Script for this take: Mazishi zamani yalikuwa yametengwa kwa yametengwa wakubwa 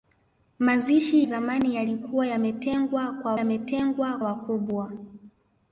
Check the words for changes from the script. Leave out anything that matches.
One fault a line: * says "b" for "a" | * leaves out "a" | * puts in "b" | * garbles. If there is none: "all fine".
all fine